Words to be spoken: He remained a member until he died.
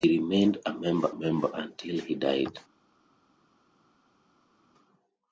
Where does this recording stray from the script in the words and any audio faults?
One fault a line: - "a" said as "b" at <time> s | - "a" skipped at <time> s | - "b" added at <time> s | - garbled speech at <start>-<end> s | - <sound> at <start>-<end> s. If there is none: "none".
- "member" added at 1.1 s